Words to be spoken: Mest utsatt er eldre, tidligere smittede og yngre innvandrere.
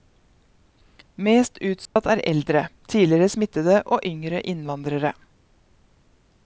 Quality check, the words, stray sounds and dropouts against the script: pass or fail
fail